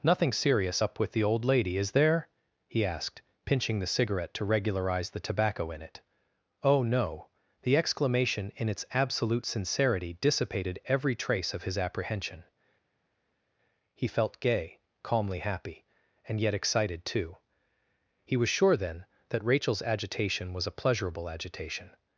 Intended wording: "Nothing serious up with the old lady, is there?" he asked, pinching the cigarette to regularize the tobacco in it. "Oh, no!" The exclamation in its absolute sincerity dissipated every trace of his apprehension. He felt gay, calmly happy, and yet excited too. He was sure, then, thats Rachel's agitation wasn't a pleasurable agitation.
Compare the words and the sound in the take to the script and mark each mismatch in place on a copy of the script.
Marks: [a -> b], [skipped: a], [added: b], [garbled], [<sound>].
"Nothing serious up with the old lady, is there?" he asked, pinching the cigarette to regularize the tobacco in it. "Oh, no!" The exclamation in its absolute sincerity dissipated every trace of his apprehension. He felt gay, calmly happy, and yet excited too. He was sure, then, [thats -> that] Rachel's agitation [wasn't -> was] a pleasurable agitation.